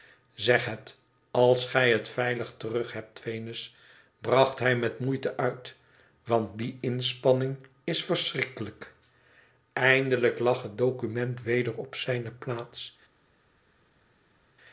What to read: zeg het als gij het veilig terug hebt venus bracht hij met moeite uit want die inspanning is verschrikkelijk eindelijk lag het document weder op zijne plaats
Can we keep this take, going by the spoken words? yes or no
yes